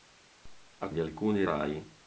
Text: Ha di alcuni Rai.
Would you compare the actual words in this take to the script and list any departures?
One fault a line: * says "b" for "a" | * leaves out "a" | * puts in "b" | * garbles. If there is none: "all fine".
all fine